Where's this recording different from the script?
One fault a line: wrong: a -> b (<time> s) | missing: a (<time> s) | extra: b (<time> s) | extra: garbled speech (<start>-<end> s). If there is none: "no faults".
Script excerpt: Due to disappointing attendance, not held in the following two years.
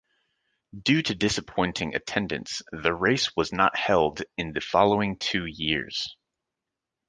extra: the race was (2.7 s)